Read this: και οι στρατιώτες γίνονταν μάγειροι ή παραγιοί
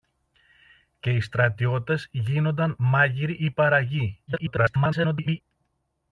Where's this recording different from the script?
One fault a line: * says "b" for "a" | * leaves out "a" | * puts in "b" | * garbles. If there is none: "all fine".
* garbles